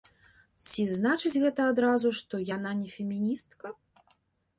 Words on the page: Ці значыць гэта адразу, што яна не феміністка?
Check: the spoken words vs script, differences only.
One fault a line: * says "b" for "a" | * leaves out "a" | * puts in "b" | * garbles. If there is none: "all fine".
all fine